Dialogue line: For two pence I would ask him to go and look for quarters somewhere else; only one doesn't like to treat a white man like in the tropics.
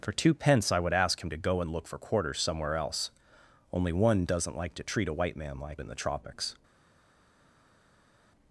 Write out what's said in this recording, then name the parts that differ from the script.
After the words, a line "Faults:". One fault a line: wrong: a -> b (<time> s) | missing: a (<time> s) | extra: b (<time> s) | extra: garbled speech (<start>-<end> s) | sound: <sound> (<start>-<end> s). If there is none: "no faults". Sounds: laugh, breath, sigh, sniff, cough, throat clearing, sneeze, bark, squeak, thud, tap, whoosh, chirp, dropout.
For two pence I would ask him to go and look for quarters somewhere else; only one doesn't like to treat a white man like in the tropics.
Faults:
no faults